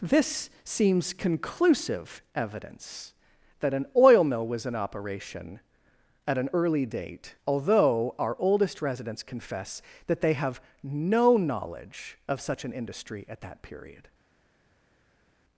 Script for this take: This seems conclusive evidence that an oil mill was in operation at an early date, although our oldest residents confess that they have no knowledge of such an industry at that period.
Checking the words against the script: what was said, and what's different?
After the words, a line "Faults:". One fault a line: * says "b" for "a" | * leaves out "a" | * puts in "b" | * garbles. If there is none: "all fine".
This seems conclusive evidence that an oil mill was in operation at an early date, although our oldest residents confess that they have no knowledge of such an industry at that period.
Faults:
all fine